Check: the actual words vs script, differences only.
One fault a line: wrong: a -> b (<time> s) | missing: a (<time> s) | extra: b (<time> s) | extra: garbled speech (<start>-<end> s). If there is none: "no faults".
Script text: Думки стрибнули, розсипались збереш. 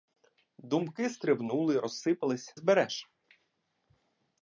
no faults